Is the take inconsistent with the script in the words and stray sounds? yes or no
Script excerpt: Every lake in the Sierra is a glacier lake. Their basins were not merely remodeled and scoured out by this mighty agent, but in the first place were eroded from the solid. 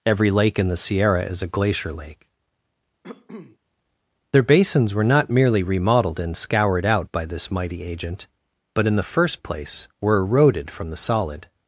yes